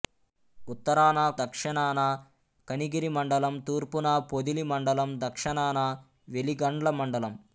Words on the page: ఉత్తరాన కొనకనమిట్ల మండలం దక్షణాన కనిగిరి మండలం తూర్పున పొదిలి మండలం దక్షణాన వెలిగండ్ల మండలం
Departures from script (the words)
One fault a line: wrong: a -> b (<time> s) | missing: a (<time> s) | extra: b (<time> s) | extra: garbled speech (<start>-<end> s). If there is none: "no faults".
missing: కొనకనమిట్ల మండలం (1.2 s)